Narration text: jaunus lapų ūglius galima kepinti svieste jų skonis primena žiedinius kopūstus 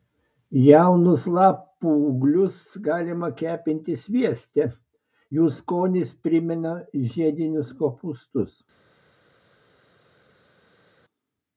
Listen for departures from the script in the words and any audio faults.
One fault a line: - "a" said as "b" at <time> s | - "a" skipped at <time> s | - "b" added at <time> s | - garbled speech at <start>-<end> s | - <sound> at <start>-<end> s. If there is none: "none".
none